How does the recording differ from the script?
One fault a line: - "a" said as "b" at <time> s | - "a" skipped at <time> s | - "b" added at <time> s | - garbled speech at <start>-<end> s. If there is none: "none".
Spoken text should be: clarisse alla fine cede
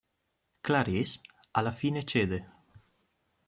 none